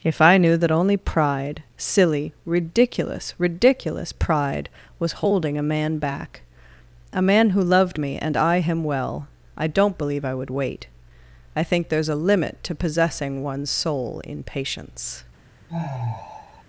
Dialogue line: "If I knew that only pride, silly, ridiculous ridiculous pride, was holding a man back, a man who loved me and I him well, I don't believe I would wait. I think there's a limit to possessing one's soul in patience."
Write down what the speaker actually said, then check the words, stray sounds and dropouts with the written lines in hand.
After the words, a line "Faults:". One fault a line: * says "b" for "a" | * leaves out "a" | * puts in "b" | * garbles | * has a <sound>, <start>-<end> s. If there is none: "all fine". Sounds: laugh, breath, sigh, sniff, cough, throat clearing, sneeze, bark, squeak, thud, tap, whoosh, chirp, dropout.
"If I knew that only pride, silly, ridiculous ridiculous pride, was holding a man back, a man who loved me and I him well, I don't believe I would wait. I think there's a limit to possessing one's soul in patience."
Faults:
* has a sigh, 15.7-16.6 s